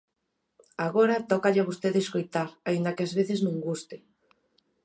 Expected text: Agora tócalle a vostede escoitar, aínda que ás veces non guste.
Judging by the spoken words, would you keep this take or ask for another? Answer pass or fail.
pass